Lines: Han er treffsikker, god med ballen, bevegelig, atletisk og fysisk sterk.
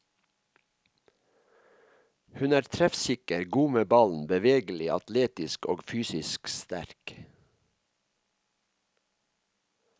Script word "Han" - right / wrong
wrong